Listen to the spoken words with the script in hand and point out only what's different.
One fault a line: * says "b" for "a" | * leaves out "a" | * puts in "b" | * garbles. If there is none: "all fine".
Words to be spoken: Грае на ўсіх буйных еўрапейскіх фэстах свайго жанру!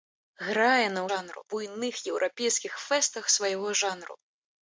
* says "жанру" for "ўсіх"